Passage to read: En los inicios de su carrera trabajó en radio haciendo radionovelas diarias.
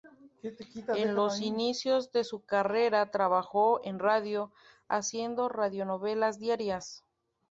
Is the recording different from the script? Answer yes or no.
no